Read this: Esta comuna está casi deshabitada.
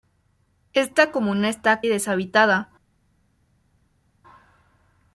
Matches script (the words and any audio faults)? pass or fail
fail